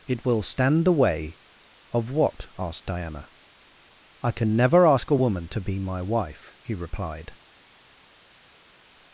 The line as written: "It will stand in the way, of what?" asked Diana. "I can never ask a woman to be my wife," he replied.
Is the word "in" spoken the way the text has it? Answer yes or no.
no